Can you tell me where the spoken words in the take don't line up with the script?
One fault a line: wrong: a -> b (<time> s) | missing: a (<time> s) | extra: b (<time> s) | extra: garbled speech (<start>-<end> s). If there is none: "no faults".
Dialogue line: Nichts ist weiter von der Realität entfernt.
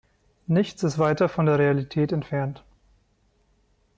no faults